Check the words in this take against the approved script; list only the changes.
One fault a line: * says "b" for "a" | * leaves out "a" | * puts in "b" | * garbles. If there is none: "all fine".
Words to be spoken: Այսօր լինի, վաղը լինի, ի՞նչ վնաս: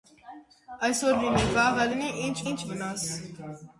* puts in "ի՞նչ"